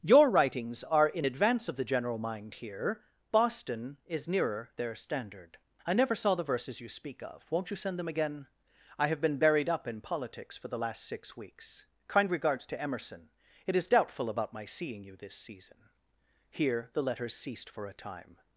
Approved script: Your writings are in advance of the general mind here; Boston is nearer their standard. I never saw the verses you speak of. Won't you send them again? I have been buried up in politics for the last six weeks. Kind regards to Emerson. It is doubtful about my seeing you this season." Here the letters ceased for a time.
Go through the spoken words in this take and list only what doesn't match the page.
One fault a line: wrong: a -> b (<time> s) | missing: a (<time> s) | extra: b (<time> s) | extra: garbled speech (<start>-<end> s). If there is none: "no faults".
no faults